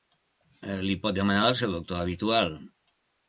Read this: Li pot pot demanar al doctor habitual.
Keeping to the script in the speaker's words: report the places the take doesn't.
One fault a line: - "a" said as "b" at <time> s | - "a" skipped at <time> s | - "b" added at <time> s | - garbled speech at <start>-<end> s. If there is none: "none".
- "pot" skipped at 1.2 s
- "seu" added at 1.6 s